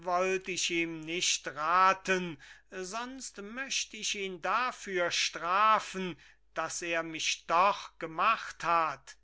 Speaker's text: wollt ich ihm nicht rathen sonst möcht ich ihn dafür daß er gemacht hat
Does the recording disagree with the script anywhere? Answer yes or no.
yes